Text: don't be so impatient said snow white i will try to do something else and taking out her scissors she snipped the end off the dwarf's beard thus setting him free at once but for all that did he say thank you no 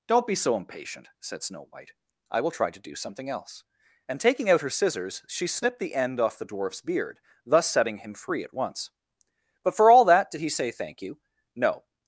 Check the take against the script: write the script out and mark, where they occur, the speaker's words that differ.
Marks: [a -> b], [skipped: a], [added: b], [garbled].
don't be so impatient said snow white i will try to do something else and taking out her scissors she snipped the end off the dwarf's beard thus setting him free at once but for all that did he say thank you no